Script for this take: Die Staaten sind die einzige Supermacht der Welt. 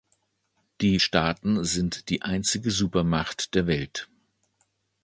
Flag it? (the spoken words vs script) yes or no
no